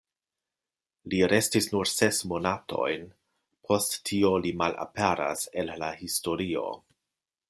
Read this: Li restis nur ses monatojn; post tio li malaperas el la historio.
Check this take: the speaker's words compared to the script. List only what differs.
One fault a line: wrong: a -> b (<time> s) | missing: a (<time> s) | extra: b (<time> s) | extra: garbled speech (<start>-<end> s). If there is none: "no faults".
no faults